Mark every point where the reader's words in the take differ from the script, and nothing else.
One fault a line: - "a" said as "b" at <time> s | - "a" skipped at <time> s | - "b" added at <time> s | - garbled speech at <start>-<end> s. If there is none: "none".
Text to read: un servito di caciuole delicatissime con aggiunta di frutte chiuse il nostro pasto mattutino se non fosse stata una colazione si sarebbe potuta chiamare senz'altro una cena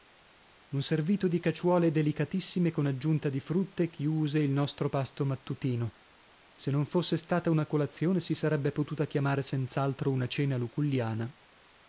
none